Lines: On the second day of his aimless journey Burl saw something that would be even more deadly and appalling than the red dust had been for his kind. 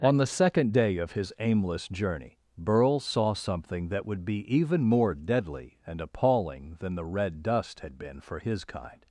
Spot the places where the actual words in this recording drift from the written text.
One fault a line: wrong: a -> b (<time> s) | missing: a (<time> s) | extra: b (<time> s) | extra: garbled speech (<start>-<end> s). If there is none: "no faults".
no faults